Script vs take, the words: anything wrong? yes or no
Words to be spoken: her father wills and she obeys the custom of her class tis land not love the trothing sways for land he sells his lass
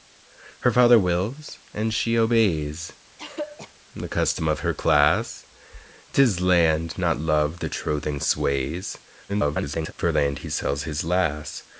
yes